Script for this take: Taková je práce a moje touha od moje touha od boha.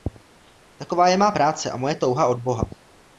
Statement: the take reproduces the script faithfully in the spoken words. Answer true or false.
false